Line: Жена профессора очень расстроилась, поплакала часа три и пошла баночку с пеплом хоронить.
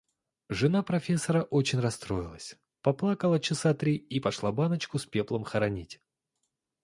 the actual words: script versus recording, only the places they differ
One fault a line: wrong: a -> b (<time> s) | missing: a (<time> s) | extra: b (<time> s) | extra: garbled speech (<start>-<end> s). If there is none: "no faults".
no faults